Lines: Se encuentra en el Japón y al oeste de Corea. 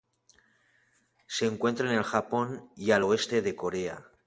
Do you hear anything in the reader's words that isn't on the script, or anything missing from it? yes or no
no